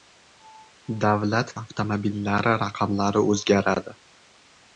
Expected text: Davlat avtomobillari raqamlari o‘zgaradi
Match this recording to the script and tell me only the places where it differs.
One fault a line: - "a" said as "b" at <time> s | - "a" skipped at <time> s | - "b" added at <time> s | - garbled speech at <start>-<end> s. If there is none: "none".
none